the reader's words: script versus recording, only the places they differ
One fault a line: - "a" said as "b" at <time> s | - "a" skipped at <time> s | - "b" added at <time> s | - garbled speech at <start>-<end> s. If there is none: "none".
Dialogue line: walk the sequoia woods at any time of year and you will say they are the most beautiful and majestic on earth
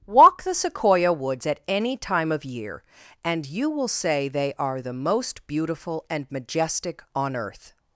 none